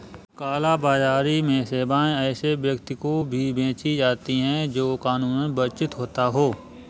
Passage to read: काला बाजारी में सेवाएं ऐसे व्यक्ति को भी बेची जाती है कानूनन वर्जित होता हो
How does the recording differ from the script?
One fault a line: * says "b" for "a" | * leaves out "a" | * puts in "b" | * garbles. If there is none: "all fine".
* puts in "जो"